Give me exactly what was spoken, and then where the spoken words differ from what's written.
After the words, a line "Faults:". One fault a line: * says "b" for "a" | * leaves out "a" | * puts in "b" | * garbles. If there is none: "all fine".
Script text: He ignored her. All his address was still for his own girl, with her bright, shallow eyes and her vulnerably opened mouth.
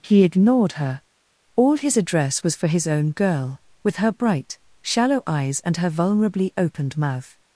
He ignored her. All his address was for his own girl, with her bright, shallow eyes and her vulnerably opened mouth.
Faults:
* leaves out "still"